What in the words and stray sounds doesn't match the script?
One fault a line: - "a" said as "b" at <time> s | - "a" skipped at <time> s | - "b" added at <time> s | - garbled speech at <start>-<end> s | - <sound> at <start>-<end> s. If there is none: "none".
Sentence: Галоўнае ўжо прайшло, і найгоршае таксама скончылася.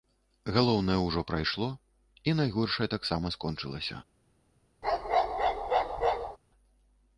- bark at 4.8-6.4 s